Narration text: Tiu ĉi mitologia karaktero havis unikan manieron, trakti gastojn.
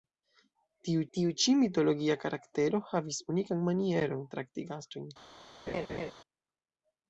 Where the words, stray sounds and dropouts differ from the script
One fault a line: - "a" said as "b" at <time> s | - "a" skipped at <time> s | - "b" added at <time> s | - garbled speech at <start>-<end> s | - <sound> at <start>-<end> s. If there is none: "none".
- "tiu" added at 1.2 s
- laugh at 5.7-6.1 s